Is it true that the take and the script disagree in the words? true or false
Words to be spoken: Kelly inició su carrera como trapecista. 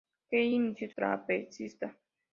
true